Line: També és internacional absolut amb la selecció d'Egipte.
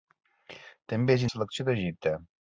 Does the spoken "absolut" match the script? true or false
false